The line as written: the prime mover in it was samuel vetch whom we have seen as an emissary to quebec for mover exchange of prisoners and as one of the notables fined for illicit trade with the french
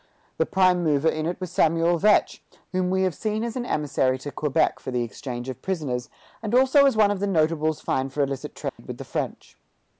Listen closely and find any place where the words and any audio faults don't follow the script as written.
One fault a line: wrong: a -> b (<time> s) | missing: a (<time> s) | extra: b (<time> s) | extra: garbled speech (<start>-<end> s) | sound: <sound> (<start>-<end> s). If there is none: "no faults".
wrong: mover -> the (4.9 s)
extra: also (6.5 s)
sound: dropout (8.7-8.8 s)